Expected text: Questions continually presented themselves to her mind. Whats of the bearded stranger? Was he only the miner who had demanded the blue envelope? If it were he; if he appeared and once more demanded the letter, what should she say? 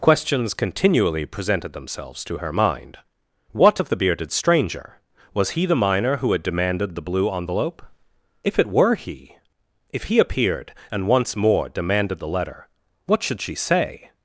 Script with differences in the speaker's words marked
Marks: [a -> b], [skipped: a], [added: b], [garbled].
Questions continually presented themselves to her mind. [Whats -> What] of the bearded stranger? Was he [skipped: only] the miner who had demanded the blue envelope? If it were he; if he appeared and once more demanded the letter, what should she say?